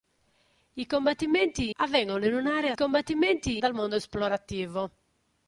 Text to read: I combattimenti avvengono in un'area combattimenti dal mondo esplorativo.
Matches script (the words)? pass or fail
pass